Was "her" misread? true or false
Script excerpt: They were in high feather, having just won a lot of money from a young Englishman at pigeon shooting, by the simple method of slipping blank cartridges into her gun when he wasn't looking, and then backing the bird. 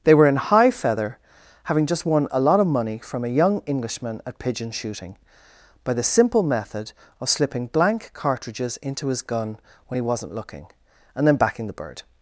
true